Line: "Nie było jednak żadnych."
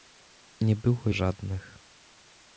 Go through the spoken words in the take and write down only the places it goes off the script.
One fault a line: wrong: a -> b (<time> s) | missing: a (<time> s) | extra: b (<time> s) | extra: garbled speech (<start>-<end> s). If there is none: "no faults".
missing: jednak (1.1 s)